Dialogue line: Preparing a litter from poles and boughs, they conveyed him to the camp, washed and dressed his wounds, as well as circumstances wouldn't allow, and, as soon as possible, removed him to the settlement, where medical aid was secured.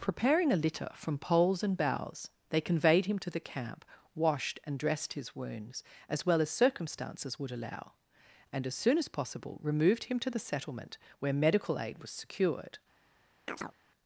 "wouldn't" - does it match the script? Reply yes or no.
no